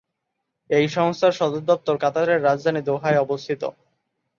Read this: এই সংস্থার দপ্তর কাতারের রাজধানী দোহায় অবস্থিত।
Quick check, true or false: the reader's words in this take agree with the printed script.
false